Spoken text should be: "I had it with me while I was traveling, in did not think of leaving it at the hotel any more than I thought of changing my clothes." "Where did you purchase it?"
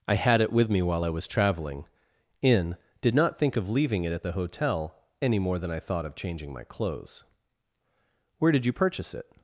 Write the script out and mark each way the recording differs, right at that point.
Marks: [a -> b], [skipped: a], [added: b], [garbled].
"I had it with me while I was traveling, in did not think of leaving it at the hotel any more than I thought of changing my clothes." "Where did you purchase it?"